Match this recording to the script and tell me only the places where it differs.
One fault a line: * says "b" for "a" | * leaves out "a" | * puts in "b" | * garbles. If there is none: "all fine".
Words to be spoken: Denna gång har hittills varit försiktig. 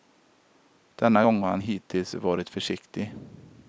* puts in "han"